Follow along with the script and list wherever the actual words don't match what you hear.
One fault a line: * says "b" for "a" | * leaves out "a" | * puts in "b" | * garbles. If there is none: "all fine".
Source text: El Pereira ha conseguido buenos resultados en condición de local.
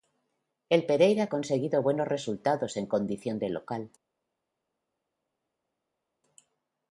all fine